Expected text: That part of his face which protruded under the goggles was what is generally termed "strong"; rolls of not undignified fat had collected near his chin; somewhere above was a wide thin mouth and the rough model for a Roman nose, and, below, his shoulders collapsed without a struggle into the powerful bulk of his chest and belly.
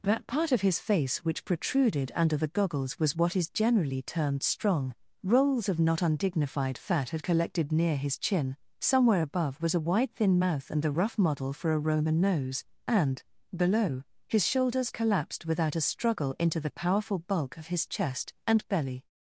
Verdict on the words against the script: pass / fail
pass